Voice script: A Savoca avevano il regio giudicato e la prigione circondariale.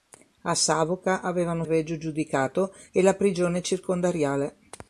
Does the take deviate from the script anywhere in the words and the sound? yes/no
no